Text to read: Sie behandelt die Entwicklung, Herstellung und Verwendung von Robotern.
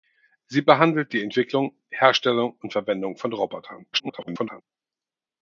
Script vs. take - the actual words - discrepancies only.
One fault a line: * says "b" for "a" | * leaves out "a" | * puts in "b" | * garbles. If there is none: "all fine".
* garbles